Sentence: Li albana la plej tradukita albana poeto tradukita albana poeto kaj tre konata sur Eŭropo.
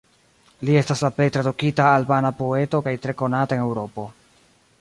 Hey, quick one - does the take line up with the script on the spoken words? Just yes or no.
no